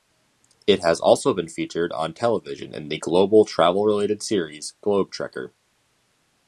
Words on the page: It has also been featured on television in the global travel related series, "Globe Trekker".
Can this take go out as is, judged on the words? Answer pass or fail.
pass